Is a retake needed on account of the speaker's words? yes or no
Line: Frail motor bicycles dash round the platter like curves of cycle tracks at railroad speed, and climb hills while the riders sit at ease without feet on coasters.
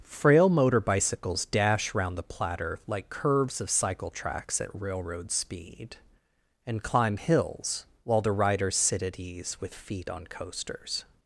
yes